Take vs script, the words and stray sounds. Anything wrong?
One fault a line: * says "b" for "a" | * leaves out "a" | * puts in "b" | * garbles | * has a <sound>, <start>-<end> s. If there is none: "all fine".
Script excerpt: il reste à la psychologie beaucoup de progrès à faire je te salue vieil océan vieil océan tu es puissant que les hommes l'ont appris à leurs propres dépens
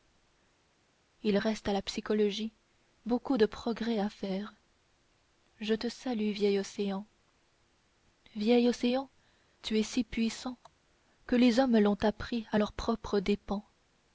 * puts in "si"